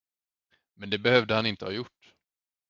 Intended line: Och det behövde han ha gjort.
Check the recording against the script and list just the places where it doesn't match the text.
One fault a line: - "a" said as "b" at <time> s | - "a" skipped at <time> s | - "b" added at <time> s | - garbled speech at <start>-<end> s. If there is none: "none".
- "Och" said as "Men" at 0.8 s
- "inte" added at 1.4 s